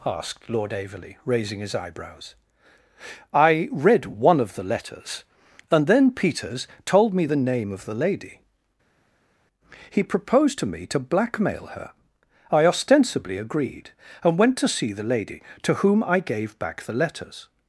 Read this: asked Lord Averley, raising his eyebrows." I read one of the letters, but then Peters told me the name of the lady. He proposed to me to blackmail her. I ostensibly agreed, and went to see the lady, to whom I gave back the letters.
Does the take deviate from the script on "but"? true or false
true